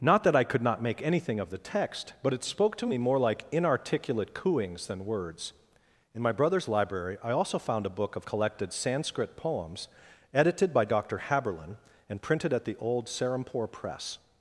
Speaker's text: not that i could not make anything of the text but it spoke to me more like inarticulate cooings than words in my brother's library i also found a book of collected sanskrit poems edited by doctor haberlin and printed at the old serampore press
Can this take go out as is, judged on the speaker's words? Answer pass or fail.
pass